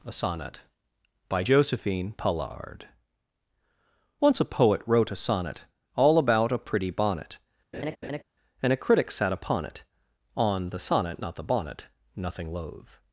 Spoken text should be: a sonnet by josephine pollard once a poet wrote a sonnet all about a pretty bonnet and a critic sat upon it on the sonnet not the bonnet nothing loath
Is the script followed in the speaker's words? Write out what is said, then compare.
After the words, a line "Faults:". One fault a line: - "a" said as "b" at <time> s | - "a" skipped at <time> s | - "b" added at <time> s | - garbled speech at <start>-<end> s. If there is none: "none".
a sonnet by josephine pollard once a poet wrote a sonnet all about a pretty bonnet and a critic sat upon it on the sonnet not the bonnet nothing loath
Faults:
none